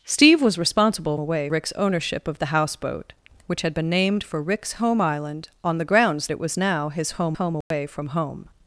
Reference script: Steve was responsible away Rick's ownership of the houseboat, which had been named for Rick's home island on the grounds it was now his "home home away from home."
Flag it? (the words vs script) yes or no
no